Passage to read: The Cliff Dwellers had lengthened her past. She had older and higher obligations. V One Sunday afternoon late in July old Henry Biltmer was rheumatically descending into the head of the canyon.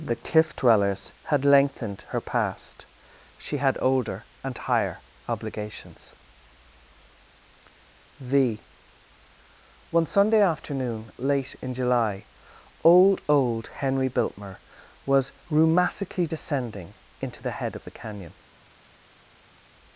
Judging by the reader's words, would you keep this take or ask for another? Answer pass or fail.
fail